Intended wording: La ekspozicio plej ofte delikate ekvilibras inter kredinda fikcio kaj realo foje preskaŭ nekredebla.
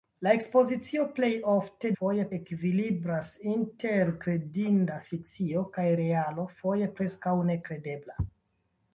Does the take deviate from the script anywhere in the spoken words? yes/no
yes